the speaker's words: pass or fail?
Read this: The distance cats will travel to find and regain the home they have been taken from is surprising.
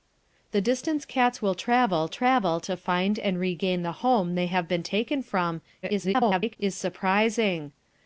fail